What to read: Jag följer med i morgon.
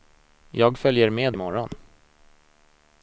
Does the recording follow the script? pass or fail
pass